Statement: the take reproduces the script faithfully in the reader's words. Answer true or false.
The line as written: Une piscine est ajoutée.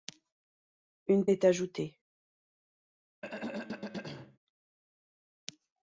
false